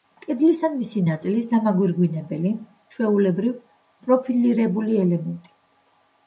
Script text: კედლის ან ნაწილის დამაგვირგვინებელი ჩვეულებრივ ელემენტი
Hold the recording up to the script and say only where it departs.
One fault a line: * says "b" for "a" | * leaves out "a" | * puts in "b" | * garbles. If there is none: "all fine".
* puts in "მისი"
* puts in "პროფილირებული"